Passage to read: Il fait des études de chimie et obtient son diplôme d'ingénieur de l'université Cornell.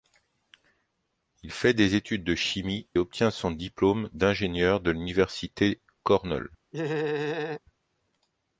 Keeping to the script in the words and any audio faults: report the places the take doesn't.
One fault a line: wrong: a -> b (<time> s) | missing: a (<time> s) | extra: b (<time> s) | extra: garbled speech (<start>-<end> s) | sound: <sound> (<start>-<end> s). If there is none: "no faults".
missing: et (2.9 s)
sound: laugh (6.7-7.6 s)